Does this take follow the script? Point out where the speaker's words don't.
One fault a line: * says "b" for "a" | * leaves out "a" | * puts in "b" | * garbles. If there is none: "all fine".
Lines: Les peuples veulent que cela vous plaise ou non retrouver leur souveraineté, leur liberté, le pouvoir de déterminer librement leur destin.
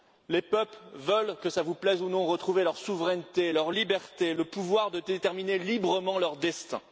all fine